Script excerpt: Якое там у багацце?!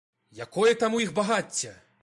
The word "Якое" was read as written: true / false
true